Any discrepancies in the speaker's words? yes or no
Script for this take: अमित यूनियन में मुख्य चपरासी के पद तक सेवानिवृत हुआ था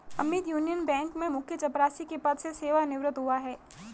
yes